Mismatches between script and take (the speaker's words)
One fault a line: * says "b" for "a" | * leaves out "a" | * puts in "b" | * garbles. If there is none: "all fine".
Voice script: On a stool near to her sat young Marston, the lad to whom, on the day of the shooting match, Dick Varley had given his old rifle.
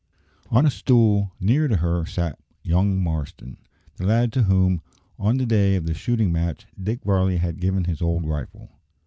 all fine